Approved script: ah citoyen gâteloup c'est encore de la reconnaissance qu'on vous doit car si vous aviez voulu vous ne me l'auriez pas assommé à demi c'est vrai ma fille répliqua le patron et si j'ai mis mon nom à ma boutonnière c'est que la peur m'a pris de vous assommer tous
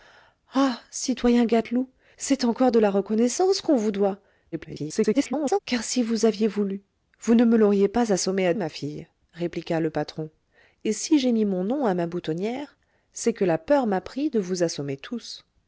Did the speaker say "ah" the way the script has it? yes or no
yes